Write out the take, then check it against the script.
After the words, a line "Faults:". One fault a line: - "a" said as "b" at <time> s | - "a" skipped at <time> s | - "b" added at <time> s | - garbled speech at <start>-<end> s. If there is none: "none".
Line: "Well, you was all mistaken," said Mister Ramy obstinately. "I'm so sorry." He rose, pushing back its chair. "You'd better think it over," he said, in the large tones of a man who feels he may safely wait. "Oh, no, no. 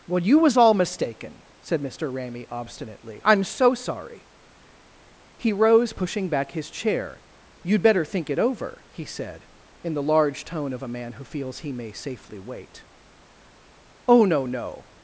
"Well, you was all mistaken," said Mister Ramy obstinately. "I'm so sorry." He rose, pushing back his chair. "You'd better think it over," he said, in the large tone of a man who feels he may safely wait. "Oh, no, no.
Faults:
- "its" said as "his" at 6.5 s
- "tones" said as "tone" at 10.4 s